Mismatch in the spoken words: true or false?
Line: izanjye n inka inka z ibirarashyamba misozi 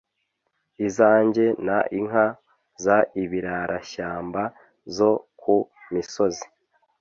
true